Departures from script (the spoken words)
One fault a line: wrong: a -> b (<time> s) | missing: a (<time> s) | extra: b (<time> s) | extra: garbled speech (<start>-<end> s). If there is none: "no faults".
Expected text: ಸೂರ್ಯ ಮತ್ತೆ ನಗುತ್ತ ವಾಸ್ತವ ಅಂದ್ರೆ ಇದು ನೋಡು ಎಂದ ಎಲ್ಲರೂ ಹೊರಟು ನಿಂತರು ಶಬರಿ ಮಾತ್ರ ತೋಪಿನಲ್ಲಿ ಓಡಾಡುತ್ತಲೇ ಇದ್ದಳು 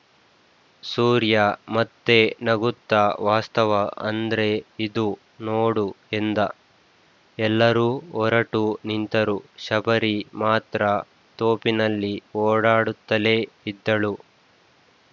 no faults